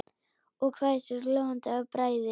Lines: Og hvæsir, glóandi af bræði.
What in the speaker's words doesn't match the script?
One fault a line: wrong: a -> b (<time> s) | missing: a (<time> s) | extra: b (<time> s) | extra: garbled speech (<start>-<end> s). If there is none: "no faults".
no faults